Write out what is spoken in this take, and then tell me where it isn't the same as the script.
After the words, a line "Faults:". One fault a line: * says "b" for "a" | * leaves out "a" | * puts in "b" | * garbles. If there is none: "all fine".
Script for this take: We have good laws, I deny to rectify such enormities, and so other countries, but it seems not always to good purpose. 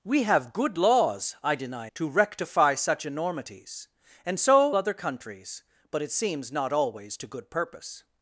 We have good laws, I deny to rectify such enormities, and so other countries, but it seems not always to good purpose.
Faults:
all fine